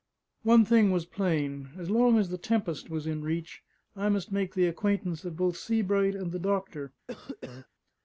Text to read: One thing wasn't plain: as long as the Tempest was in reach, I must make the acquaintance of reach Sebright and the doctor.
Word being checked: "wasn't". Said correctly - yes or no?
no